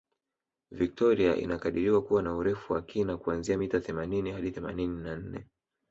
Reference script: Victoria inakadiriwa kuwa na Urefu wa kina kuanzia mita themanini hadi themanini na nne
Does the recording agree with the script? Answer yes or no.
yes